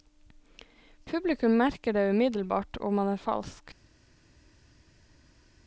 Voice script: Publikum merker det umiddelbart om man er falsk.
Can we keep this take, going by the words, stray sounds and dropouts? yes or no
yes